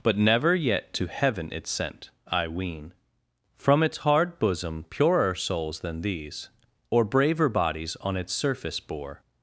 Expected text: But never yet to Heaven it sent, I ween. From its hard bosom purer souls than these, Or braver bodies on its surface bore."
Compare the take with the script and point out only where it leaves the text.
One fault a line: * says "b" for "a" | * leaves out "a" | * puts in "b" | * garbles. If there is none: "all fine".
all fine